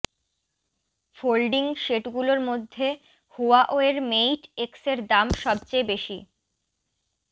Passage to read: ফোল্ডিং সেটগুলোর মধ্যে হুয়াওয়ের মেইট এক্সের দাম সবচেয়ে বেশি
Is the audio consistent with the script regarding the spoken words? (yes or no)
yes